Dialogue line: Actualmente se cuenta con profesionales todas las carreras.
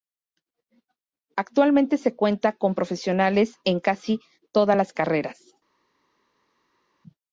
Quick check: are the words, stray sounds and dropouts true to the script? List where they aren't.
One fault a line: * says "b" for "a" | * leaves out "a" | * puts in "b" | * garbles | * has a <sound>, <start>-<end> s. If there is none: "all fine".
* puts in "en casi"